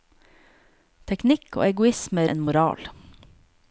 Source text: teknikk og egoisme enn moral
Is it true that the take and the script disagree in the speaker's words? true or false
false